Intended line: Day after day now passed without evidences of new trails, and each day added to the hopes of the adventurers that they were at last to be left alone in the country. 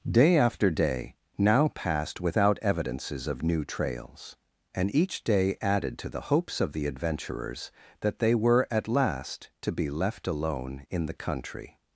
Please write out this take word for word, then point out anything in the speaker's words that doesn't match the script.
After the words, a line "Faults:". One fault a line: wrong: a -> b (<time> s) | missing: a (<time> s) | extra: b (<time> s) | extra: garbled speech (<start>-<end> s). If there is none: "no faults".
Day after day now passed without evidences of new trails, and each day added to the hopes of the adventurers that they were at last to be left alone in the country.
Faults:
no faults